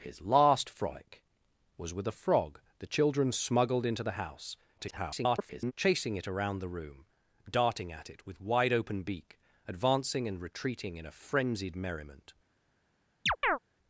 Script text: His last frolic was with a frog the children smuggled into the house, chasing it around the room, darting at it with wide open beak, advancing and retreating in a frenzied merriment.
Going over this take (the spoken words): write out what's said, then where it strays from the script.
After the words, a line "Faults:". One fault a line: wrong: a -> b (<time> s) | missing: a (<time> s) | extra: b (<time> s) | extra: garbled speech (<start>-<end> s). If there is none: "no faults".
His last frolic was with a frog the children smuggled into the house, [garbled] chasing it around the room, darting at it with wide open beak, advancing and retreating in a frenzied merriment.
Faults:
extra: garbled speech (4.8-5.7 s)